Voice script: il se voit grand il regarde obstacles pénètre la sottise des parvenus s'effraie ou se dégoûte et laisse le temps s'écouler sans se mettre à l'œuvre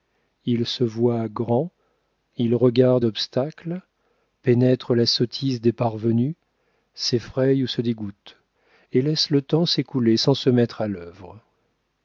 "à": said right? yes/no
yes